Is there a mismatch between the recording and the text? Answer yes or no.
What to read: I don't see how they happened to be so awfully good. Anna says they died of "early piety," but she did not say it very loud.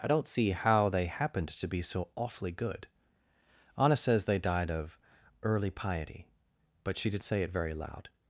yes